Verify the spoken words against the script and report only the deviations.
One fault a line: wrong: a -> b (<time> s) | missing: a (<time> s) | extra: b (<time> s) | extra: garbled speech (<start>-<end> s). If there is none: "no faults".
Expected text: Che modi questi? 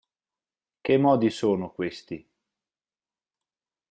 extra: sono (1.3 s)